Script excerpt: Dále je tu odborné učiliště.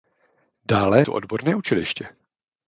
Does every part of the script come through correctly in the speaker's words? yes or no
no